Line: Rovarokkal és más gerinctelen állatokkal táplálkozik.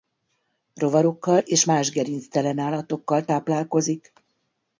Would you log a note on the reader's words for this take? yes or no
no